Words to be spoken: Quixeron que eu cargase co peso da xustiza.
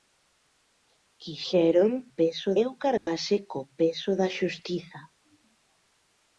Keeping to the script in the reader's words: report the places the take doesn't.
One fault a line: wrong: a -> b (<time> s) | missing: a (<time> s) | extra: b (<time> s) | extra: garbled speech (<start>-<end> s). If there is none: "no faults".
wrong: que -> peso (2.2 s)